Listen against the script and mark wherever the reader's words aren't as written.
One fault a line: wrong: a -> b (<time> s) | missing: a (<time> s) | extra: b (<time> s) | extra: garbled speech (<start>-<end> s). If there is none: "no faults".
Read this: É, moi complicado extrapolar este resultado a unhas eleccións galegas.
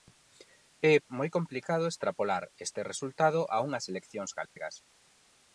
no faults